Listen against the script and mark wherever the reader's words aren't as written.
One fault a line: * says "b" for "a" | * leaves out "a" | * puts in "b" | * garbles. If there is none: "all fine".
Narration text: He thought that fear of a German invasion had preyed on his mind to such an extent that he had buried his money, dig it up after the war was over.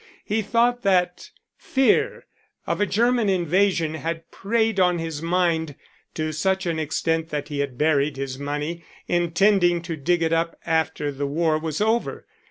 * puts in "intending to"